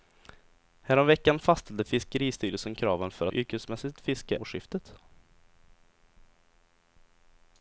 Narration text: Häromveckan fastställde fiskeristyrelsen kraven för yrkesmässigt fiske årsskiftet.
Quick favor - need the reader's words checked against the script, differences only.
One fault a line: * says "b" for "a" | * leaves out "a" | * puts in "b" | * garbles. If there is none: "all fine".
all fine